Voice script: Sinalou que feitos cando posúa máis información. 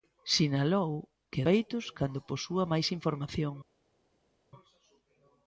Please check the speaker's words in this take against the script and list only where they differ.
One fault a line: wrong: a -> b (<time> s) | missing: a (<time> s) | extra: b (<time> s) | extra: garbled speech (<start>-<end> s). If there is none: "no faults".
no faults